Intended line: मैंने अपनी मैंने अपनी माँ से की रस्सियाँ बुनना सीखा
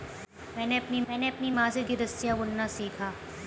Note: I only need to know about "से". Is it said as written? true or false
true